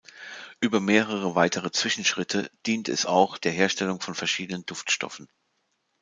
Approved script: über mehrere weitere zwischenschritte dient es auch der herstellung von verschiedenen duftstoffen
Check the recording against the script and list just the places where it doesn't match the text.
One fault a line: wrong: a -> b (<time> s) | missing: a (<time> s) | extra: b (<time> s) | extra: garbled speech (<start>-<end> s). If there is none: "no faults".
no faults